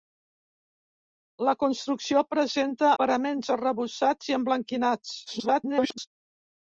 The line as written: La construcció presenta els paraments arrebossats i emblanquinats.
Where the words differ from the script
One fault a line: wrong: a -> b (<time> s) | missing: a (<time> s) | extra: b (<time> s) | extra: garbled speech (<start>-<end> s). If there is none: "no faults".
missing: els (2.9 s)
extra: garbled speech (5.3-6.1 s)